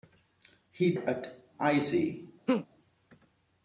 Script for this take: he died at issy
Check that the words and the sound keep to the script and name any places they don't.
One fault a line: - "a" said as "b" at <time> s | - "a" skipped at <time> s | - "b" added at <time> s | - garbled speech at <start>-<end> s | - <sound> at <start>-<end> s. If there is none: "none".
- "died" skipped at 1.0 s
- laugh at 2.5-2.7 s